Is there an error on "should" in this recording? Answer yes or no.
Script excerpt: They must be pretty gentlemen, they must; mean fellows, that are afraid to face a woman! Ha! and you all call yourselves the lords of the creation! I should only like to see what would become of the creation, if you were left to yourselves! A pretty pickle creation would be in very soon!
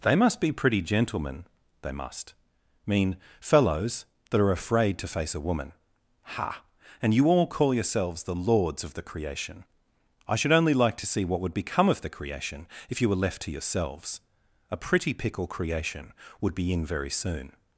no